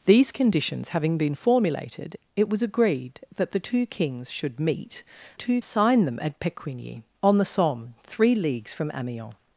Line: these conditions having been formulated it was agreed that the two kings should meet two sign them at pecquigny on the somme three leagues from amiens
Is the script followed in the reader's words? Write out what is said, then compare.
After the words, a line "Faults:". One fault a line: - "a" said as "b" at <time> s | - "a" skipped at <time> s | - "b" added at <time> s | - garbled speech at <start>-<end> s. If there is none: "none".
these conditions having been formulated it was agreed that the two kings should meet two sign them at pecquigny on the somme three leagues from amiens
Faults:
none